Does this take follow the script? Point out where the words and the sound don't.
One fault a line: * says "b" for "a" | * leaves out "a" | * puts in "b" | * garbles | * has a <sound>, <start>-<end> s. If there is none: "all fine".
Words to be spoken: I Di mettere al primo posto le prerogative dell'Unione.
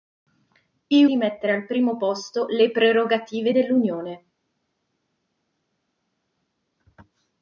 all fine